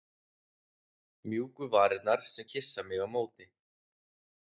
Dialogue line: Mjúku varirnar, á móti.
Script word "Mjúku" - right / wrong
right